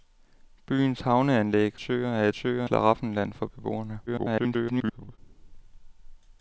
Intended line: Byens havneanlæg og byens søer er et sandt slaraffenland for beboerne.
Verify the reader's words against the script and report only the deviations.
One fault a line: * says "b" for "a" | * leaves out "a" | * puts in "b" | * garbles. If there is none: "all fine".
* leaves out "og byens"
* says "søer" for "sandt"
* garbles